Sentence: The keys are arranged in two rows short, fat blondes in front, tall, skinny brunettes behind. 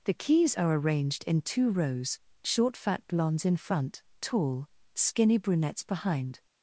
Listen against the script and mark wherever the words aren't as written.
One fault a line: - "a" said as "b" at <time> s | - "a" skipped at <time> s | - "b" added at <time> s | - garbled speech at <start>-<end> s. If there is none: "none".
none